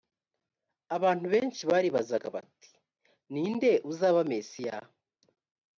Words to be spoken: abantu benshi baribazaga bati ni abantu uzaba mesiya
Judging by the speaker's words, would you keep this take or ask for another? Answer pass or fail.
fail